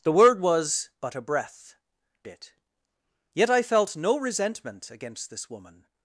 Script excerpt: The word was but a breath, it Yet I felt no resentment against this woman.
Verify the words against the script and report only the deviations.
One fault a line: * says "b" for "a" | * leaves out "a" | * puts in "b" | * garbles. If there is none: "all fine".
all fine